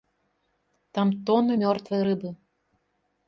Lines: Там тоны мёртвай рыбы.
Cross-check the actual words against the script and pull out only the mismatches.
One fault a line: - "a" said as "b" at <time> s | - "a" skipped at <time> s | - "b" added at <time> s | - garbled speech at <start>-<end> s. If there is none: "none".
none